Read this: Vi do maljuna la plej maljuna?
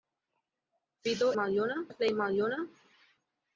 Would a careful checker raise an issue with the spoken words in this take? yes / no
no